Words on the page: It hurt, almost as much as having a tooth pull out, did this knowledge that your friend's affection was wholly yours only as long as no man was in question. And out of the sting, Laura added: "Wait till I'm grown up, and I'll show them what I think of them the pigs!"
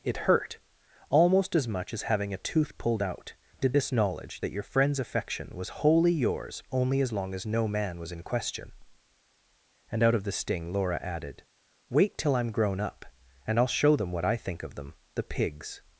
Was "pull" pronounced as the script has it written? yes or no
no